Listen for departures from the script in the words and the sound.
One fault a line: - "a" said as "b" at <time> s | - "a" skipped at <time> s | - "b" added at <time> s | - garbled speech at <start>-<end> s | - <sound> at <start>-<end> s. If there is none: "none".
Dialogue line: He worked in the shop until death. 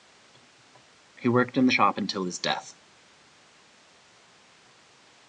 - "his" added at 2.2 s